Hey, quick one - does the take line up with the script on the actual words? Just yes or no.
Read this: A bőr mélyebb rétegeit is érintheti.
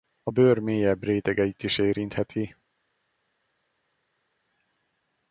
yes